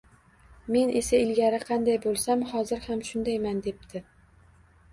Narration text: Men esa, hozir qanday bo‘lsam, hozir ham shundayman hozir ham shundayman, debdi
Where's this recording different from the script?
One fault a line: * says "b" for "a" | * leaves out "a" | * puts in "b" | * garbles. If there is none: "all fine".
* says "ilgari" for "hozir"
* leaves out "hozir ham shundayman"